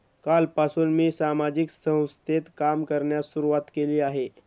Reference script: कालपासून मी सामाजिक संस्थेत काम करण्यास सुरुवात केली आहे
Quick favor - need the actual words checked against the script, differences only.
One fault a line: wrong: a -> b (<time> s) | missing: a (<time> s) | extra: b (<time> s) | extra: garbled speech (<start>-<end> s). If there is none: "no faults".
no faults